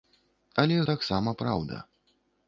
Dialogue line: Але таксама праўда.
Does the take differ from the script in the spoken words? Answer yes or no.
no